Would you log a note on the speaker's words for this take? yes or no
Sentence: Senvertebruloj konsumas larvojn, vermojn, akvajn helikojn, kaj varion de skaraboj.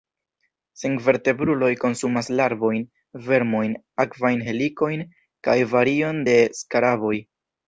no